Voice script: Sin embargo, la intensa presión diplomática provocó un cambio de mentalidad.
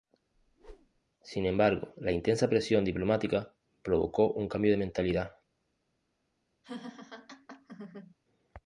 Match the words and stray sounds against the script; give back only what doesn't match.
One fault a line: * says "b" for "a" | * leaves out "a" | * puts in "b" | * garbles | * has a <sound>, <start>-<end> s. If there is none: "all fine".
* has a whoosh, 0.3-1.0 s
* has a laugh, 6.6-8.2 s